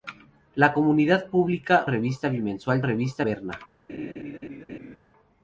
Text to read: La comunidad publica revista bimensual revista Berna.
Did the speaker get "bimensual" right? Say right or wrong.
right